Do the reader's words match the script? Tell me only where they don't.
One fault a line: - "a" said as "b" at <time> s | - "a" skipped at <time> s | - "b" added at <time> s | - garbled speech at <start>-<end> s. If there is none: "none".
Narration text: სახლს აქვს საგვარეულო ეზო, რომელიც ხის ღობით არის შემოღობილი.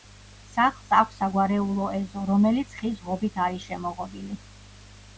none